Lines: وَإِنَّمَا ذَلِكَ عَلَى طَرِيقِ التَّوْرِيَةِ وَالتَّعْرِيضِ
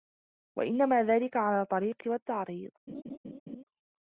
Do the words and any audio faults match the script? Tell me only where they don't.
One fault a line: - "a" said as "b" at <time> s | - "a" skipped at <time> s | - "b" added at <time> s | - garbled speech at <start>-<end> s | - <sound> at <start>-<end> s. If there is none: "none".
- "التَّوْرِيَةِ" skipped at 2.0 s
- laugh at 2.9-3.6 s